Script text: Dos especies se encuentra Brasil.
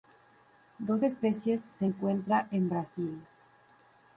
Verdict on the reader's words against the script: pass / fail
fail